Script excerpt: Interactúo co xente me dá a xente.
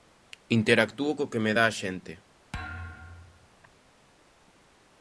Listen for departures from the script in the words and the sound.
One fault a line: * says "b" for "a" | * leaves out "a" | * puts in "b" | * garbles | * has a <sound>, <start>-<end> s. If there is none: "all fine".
* says "que" for "xente"
* has a thud, 2.5-3.5 s